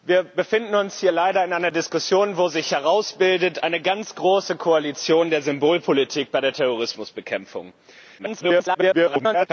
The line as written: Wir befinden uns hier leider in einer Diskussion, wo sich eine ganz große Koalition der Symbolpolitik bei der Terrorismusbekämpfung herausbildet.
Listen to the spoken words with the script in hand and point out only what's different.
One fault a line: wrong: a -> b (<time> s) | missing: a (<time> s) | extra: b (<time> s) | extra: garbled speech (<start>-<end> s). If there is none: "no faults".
extra: garbled speech (8.2-9.5 s)